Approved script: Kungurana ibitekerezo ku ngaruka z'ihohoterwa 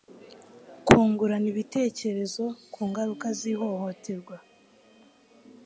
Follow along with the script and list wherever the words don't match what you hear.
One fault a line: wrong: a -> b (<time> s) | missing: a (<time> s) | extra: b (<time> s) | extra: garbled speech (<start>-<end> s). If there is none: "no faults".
no faults